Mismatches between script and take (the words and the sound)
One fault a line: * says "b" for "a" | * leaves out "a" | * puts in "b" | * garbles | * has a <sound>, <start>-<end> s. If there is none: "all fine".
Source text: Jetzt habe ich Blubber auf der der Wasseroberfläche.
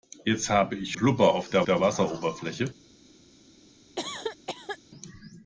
* has a cough, 4.0-4.8 s